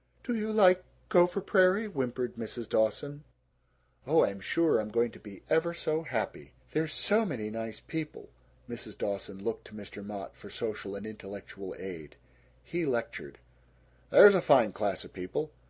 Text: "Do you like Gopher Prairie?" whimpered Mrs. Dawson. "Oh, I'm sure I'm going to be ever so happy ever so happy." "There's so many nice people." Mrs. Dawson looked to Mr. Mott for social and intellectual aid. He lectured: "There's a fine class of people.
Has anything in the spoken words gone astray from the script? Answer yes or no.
yes